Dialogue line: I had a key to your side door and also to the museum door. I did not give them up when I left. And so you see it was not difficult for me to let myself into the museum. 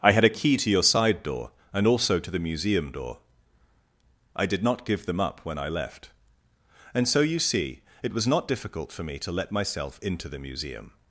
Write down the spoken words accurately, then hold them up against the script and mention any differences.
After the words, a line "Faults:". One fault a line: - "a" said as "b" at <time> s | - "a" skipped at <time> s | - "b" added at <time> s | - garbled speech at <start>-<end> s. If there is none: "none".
I had a key to your side door and also to the museum door. I did not give them up when I left. And so you see it was not difficult for me to let myself into the museum.
Faults:
none